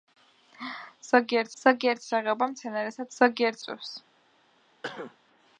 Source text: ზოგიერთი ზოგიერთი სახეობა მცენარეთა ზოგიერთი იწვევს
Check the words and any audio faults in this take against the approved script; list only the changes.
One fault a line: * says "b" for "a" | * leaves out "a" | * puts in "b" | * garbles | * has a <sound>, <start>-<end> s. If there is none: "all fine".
* has a cough, 4.8-5.2 s